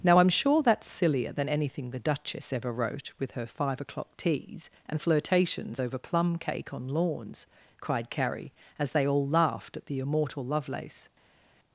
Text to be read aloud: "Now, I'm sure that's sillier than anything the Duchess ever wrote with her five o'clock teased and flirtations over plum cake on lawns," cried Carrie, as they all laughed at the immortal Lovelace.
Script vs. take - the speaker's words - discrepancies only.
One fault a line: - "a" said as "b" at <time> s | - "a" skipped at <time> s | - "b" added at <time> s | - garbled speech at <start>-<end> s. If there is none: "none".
- "teased" said as "teas" at 4.2 s